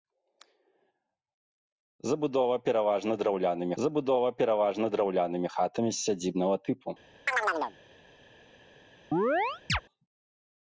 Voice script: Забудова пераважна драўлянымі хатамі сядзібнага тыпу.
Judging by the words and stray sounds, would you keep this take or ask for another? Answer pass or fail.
fail